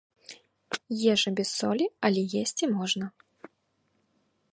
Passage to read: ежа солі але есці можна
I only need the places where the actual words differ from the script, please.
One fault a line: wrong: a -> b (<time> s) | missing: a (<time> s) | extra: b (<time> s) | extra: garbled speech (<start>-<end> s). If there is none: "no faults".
extra: без (1.4 s)